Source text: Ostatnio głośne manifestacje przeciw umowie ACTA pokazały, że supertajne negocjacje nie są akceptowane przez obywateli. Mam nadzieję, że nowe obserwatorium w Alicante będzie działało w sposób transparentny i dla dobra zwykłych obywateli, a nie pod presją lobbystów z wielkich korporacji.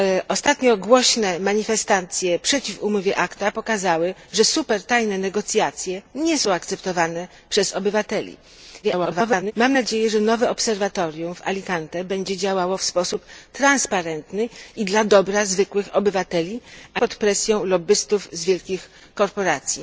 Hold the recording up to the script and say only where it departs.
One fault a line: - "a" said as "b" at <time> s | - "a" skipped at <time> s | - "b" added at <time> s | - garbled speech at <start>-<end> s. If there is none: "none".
- garbled speech at 8.8-9.5 s
- "nie" skipped at 17.0 s